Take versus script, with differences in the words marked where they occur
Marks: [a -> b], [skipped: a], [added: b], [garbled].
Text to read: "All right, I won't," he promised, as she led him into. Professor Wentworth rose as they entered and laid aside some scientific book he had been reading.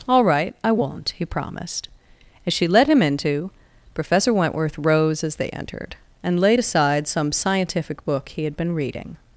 "All right, I won't," he promised, as she led him into. Professor Wentworth rose as they entered and laid aside some scientific book he had been reading.